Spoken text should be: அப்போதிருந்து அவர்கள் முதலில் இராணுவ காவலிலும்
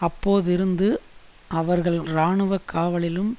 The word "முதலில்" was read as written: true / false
false